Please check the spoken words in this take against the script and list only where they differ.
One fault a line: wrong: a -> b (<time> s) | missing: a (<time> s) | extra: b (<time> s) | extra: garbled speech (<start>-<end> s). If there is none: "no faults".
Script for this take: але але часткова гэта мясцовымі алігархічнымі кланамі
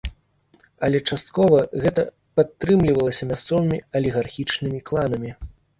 missing: але (1.0 s)
extra: падтрымлівалася (2.4 s)